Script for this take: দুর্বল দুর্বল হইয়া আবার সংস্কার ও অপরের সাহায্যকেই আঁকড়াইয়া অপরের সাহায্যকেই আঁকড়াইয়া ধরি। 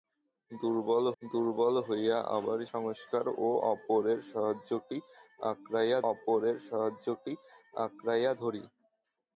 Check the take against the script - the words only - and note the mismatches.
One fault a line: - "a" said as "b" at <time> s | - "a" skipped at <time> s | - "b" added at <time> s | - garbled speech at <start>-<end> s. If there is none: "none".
none